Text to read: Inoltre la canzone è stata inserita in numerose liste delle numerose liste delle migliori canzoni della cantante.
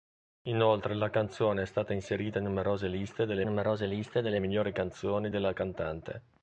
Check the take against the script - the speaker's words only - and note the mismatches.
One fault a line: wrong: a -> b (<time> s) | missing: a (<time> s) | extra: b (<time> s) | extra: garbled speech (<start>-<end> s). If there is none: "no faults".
no faults